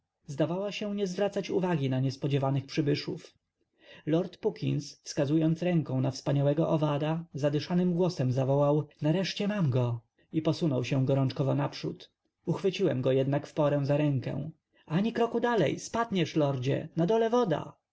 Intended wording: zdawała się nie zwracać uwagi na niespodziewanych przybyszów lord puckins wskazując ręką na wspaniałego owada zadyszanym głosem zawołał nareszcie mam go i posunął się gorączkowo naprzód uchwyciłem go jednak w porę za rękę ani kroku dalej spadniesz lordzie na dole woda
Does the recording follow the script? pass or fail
pass